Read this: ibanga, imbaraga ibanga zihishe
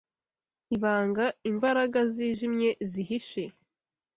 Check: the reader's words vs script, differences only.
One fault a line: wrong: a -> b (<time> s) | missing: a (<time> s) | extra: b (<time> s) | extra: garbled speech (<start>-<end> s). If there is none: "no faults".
wrong: ibanga -> zijimye (2.1 s)